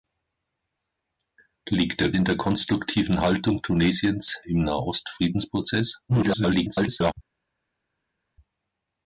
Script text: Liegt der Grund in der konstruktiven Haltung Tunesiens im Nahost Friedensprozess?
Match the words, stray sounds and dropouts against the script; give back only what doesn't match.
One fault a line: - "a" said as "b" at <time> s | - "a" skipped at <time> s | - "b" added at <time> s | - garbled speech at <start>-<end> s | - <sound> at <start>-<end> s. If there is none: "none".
- "Grund" skipped at 2.1 s
- garbled speech at 6.1-7.1 s